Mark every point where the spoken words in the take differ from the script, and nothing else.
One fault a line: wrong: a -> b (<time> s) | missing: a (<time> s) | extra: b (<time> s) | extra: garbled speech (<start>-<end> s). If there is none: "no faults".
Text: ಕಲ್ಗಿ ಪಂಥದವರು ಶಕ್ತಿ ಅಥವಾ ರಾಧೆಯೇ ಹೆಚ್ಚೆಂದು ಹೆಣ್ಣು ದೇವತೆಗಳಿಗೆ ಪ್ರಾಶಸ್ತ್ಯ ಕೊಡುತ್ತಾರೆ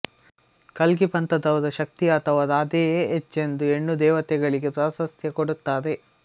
no faults